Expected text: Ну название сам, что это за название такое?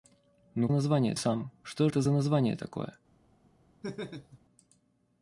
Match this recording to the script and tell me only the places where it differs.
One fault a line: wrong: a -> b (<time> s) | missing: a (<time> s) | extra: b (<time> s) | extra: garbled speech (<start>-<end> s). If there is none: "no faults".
no faults